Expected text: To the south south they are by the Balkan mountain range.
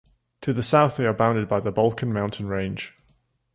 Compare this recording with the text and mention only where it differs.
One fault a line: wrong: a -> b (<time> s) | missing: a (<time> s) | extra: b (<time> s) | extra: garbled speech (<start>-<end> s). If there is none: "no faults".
missing: south (1.0 s)
extra: bounded (1.1 s)